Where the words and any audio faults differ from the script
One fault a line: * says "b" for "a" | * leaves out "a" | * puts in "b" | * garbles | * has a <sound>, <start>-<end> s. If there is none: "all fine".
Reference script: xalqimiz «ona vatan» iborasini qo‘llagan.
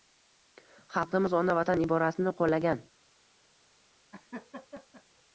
* has a laugh, 4.1-5.0 s